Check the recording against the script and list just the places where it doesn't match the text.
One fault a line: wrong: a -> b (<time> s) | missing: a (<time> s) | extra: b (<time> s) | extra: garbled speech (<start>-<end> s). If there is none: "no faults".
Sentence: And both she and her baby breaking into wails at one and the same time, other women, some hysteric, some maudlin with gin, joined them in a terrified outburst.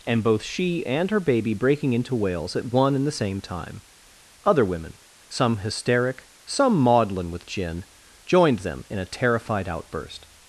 no faults